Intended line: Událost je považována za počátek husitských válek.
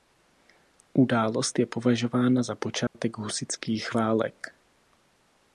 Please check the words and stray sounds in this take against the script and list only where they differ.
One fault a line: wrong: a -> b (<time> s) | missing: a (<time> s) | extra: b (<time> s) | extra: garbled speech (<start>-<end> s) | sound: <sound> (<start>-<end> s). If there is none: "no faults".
sound: dropout (2.9-2.9 s)